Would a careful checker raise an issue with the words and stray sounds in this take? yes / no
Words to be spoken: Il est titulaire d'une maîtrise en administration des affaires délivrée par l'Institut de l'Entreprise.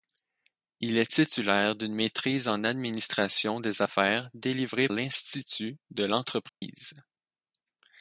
yes